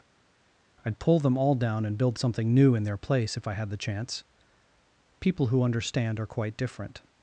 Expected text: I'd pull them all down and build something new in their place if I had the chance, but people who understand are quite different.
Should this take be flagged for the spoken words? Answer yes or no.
yes